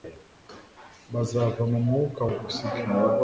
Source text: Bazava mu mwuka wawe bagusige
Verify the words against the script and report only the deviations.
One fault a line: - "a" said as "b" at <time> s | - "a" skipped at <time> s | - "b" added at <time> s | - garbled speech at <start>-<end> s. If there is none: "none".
- "wawe" skipped at 2.2 s